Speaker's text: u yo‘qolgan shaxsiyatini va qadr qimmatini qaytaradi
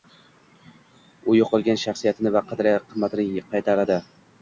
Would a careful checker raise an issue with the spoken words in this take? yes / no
no